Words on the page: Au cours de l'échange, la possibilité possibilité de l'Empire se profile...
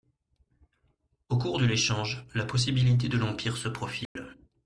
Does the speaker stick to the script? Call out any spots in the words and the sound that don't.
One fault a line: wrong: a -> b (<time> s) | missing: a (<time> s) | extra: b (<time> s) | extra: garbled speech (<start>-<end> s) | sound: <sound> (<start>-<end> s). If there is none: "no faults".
missing: possibilité (3.1 s)
sound: dropout (4.0-4.2 s)